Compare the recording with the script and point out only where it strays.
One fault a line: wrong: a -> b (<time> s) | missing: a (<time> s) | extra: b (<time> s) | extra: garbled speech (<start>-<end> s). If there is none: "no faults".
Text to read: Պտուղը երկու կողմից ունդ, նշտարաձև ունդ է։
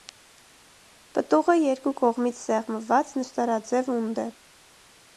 wrong: ունդ -> սեղմված (2.5 s)